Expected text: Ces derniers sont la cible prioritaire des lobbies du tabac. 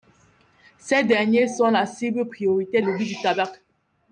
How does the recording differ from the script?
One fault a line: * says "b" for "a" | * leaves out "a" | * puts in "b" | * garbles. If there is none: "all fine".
* leaves out "des"